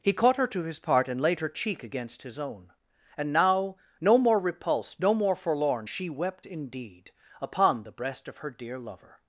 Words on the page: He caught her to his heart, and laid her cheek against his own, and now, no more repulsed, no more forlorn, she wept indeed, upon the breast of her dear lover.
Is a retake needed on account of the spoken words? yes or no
yes